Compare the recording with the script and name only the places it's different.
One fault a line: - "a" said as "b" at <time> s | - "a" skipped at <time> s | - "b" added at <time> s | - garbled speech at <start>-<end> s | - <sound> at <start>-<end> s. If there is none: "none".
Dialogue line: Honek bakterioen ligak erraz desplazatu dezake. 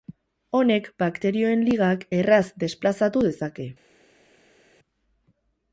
none